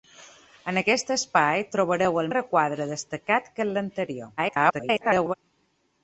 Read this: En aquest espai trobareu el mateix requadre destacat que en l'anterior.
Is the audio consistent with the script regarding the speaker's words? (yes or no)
no